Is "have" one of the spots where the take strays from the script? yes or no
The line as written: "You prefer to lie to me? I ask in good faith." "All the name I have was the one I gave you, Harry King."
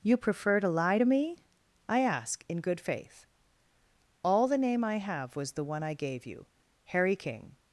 no